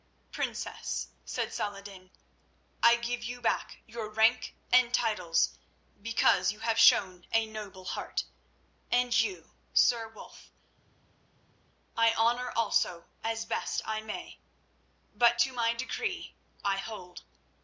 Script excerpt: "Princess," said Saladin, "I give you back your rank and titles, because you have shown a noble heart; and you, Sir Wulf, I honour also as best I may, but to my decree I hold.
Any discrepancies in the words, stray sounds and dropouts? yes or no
no